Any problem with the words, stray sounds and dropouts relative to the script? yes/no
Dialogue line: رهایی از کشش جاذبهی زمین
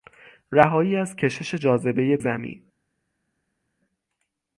no